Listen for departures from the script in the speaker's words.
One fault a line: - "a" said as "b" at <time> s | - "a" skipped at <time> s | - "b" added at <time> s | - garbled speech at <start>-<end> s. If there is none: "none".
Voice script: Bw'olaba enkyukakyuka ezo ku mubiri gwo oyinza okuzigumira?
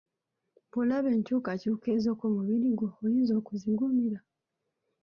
none